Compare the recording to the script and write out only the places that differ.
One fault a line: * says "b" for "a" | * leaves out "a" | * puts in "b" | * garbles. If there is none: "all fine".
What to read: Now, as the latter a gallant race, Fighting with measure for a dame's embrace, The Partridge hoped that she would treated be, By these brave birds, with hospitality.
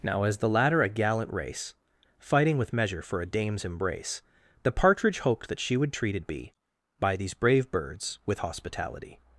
all fine